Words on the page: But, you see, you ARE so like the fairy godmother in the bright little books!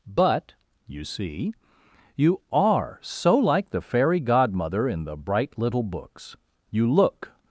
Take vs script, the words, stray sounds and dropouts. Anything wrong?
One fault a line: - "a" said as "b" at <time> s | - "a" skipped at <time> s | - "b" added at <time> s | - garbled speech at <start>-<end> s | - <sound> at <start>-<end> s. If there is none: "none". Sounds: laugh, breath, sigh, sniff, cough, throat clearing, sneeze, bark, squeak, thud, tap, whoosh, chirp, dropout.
- "You look" added at 6.7 s